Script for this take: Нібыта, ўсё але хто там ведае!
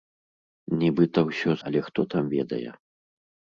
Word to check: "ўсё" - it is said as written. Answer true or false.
true